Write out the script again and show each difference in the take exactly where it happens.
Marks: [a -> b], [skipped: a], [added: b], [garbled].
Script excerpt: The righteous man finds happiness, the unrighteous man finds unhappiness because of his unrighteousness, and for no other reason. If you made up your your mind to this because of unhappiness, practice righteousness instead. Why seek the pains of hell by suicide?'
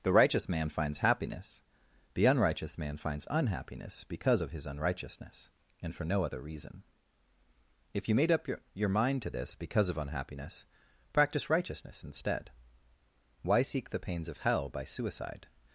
The righteous man finds happiness, the unrighteous man finds unhappiness because of his unrighteousness, and for no other reason. If you made up your your mind to this because of unhappiness, practice righteousness instead. Why seek the pains of hell by suicide?'